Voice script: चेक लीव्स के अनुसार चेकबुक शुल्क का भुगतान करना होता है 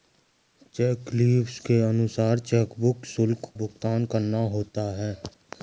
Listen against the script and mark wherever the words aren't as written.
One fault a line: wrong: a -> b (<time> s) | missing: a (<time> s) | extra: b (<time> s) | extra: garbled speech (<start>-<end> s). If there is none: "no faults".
missing: का (3.5 s)